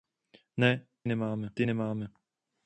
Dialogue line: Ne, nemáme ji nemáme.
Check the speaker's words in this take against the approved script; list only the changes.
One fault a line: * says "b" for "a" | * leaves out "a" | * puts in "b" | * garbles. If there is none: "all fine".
all fine